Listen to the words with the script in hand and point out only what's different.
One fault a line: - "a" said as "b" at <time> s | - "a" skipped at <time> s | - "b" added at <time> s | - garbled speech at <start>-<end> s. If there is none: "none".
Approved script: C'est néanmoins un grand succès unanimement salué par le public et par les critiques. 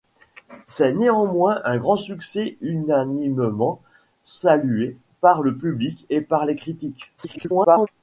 - garbled speech at 7.2-7.9 s